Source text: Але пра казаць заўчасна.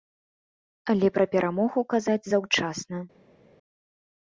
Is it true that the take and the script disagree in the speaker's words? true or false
true